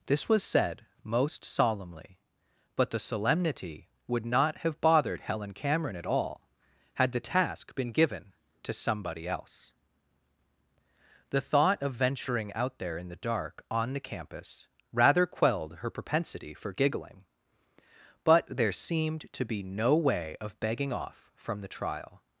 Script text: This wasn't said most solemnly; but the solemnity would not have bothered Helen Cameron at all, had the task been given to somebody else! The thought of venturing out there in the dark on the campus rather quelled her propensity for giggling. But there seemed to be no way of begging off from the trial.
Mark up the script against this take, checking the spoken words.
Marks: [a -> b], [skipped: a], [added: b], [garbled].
This [wasn't -> was] said most solemnly; but the solemnity would not have bothered Helen Cameron at all, had the task been given to somebody else! The thought of venturing out there in the dark on the campus rather quelled her propensity for giggling. But there seemed to be no way of begging off from the trial.